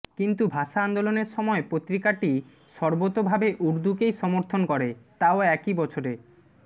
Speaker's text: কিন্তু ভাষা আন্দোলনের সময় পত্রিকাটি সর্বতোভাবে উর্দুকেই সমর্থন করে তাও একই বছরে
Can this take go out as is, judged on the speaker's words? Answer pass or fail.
pass